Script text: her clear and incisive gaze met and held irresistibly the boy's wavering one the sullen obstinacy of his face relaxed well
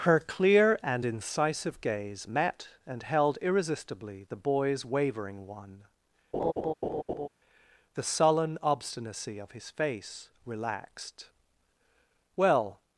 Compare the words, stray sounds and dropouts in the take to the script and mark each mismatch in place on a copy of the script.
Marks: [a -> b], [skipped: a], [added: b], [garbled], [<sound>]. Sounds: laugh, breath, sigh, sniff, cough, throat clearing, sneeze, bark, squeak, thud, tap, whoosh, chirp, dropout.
her clear and incisive gaze met and held irresistibly the boy's wavering one [laugh] the sullen obstinacy of his face relaxed well